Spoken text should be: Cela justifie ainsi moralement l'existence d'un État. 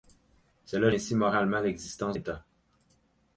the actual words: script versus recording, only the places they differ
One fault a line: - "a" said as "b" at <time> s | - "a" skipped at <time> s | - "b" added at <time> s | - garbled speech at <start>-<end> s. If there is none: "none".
- "justifie" skipped at 0.9 s
- "d'un" skipped at 2.2 s